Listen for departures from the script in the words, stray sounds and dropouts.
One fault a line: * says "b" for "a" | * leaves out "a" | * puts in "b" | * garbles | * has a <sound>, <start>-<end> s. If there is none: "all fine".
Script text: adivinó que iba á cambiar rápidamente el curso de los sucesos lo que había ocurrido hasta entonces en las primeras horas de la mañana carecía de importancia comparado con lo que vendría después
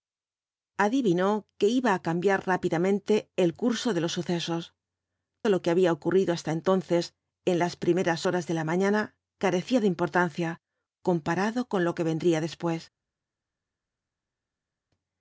all fine